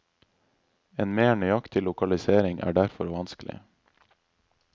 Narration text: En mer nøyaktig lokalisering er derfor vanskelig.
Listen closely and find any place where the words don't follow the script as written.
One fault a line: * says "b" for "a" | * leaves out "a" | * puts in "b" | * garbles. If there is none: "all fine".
all fine